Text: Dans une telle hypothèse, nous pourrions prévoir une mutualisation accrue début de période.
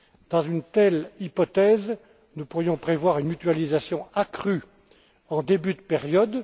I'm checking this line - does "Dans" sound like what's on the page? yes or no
yes